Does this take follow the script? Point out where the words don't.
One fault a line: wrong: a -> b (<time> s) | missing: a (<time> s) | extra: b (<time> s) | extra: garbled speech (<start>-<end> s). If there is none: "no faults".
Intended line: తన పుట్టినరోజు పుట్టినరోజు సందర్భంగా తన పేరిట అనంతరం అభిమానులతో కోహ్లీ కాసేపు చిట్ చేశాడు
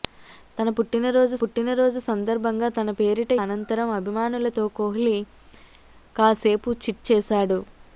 no faults